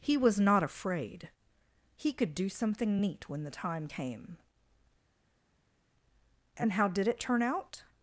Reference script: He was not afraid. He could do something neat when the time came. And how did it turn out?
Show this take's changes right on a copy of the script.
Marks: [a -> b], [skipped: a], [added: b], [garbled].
He was not afraid. He could do something neat when the time came. And how did it turn out?